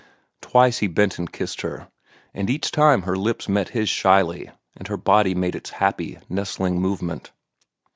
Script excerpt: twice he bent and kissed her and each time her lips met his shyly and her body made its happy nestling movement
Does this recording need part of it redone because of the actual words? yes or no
no